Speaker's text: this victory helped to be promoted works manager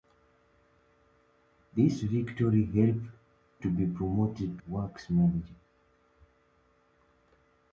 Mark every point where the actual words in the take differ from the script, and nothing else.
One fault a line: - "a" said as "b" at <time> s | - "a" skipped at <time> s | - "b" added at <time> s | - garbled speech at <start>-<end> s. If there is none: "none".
none